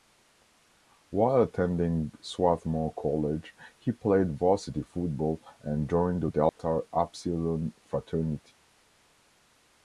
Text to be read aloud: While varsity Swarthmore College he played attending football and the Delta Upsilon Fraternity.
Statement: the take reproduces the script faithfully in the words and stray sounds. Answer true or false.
false